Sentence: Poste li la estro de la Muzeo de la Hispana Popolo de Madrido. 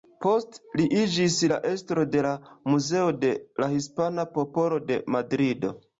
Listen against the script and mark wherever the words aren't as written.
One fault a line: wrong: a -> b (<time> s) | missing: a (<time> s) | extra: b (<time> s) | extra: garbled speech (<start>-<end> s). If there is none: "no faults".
extra: iĝis (1.0 s)